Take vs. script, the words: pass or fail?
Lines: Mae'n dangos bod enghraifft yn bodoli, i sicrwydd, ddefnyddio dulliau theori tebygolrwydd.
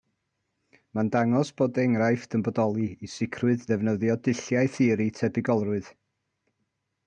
pass